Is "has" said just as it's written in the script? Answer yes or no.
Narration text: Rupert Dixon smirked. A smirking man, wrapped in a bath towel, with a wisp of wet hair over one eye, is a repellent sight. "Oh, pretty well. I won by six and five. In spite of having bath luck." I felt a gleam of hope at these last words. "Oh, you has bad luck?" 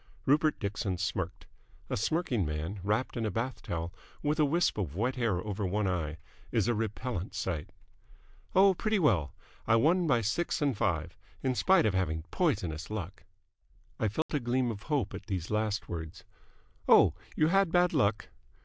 no